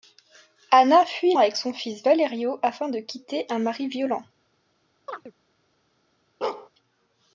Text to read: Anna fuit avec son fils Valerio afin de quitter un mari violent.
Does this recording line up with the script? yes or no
yes